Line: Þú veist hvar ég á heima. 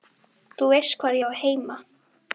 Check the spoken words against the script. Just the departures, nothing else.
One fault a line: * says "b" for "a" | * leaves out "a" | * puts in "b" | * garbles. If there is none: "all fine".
all fine